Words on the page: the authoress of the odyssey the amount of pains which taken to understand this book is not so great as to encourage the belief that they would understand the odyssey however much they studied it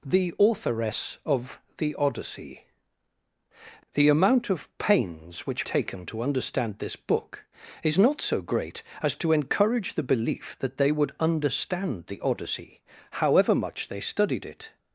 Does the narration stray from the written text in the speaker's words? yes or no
no